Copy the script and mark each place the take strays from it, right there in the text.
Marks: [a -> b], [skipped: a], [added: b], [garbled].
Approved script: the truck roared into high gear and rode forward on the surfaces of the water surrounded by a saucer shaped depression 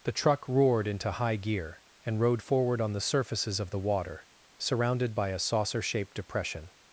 the truck roared into high gear and rode forward on the surfaces of the water surrounded by a saucer shaped depression